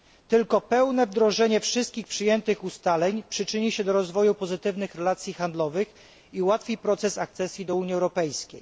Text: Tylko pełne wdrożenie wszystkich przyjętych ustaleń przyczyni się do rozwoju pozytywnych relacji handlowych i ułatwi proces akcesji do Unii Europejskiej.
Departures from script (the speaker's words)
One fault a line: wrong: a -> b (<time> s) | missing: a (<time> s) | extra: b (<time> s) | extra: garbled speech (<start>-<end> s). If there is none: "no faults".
no faults